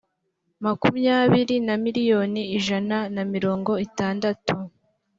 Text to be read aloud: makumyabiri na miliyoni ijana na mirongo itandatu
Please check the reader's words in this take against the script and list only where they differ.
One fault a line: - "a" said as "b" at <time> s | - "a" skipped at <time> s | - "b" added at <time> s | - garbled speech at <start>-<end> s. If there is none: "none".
none